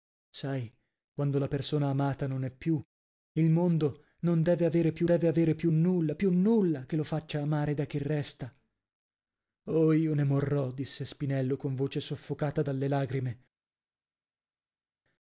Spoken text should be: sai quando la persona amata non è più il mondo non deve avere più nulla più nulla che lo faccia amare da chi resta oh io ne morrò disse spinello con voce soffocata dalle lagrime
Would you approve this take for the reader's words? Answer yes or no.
no